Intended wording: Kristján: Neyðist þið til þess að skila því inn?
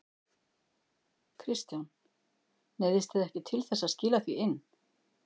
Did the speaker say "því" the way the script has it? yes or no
yes